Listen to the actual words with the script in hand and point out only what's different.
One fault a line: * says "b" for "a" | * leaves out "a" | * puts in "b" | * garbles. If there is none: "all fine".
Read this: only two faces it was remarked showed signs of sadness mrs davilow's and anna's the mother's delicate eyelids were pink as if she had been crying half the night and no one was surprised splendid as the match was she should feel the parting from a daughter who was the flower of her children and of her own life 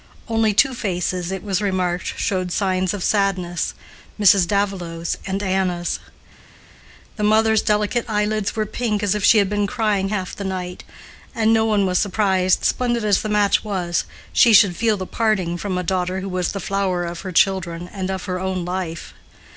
all fine